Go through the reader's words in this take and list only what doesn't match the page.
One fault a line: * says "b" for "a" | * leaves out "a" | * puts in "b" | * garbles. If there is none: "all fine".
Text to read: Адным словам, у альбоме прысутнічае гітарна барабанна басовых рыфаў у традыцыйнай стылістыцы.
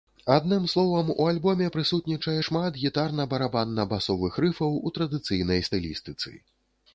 * puts in "шмат"